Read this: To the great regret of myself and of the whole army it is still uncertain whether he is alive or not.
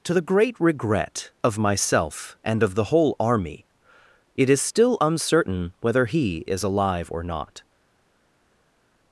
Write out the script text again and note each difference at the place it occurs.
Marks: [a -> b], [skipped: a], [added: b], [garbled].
To the great regret of myself and of the whole army it is still uncertain whether he is alive or not.